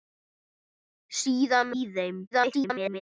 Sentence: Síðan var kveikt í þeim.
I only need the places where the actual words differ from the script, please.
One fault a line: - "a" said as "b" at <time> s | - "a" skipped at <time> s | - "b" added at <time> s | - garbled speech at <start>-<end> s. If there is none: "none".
- "var kveikt" skipped at 1.8 s
- garbled speech at 2.3-3.0 s